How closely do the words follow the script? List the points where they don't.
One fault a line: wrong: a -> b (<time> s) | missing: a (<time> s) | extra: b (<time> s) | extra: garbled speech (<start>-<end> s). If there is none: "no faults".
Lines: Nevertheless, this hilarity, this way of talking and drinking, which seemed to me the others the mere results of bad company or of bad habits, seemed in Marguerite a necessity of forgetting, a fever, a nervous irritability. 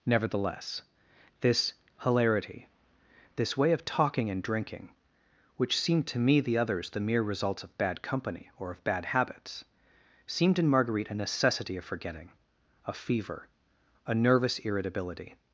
no faults